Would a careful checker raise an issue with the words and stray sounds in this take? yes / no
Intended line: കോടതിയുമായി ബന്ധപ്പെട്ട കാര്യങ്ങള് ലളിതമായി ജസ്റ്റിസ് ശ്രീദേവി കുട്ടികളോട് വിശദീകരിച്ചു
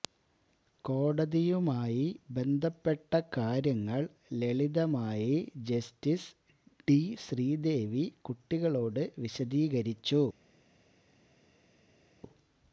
yes